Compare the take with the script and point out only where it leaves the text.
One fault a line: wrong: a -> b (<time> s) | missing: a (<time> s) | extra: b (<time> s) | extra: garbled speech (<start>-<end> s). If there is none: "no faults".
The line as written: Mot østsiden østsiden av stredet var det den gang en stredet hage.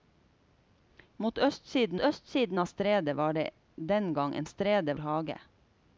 no faults